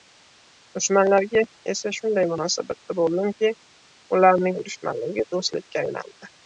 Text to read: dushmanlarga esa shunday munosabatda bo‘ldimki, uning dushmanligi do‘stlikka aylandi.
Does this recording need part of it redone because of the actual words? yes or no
yes